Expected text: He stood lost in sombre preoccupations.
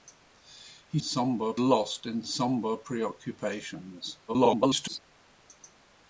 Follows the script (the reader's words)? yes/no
no